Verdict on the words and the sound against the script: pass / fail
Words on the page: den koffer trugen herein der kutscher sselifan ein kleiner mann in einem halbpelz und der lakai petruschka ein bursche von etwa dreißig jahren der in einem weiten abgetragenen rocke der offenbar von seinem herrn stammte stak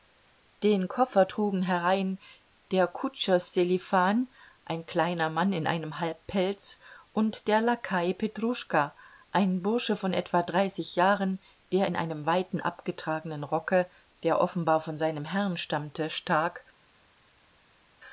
pass